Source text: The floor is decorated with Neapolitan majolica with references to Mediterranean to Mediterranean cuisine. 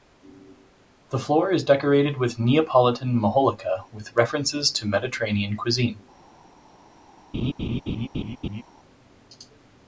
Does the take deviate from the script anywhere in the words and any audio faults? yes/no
yes